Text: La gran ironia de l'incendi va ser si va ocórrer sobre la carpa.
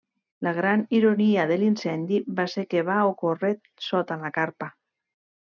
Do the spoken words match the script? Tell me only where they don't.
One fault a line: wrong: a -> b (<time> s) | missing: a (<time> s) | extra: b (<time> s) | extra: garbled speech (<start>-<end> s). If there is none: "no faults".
wrong: si -> que (2.7 s)
wrong: sobre -> sota (3.9 s)